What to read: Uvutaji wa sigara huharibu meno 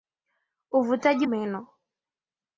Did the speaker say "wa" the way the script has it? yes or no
no